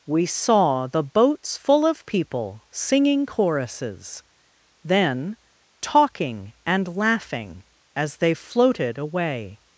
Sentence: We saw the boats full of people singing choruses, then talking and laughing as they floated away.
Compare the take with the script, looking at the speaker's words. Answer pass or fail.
pass